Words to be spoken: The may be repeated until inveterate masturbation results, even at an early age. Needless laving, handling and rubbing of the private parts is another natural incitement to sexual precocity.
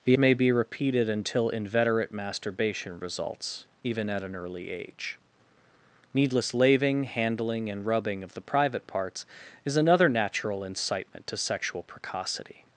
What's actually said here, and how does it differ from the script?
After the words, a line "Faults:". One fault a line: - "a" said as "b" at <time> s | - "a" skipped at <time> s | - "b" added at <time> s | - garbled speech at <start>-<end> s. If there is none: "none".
The may be repeated until inveterate masturbation results, even at an early age. Needless laving, handling and rubbing of the private parts is another natural incitement to sexual precocity.
Faults:
none